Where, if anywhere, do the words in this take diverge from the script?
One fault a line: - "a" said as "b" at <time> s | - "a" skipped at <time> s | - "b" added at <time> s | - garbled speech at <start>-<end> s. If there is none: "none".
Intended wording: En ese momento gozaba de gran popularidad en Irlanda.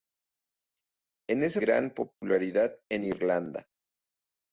- "momento gozaba de" skipped at 1.6 s